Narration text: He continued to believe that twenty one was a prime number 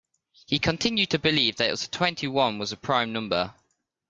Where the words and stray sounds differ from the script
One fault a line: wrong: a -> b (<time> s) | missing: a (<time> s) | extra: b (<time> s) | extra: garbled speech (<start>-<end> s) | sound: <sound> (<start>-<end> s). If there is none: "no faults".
no faults